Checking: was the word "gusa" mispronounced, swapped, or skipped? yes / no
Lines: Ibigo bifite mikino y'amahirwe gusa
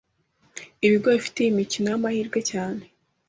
yes